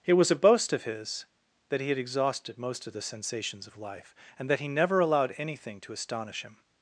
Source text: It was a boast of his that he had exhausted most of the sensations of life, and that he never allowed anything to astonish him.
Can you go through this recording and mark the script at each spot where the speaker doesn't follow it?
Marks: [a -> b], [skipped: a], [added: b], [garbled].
It was a boast of his that he had exhausted most of the sensations of life, and that he never allowed anything to astonish him.